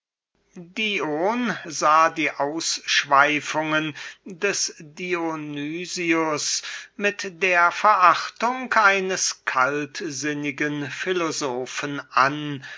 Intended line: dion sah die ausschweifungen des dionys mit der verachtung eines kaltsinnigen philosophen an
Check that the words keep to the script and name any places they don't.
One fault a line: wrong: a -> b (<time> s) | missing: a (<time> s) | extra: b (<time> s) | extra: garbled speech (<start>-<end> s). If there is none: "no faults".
no faults